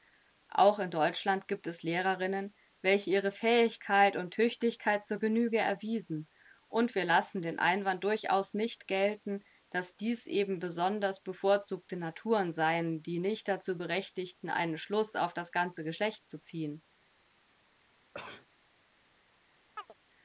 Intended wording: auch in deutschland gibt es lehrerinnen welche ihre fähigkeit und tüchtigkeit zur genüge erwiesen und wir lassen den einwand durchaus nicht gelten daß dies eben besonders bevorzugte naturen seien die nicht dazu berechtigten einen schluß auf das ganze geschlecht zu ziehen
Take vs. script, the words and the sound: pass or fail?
fail